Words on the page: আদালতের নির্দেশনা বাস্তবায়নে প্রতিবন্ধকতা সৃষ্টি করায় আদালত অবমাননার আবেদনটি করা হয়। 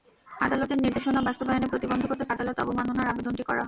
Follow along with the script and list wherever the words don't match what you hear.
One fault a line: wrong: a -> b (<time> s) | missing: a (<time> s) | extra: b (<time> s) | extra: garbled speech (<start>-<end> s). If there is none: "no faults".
missing: সৃষ্টি করায় (2.2 s)